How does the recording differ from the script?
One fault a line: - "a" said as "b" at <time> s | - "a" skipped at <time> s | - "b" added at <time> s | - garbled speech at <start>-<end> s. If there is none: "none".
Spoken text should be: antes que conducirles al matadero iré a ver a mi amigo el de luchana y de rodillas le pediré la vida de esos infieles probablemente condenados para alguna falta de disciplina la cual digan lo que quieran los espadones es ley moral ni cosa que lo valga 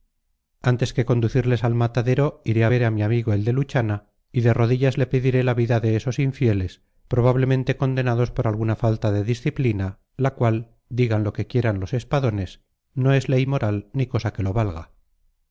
- "para" said as "por" at 8.3 s
- "no" added at 12.9 s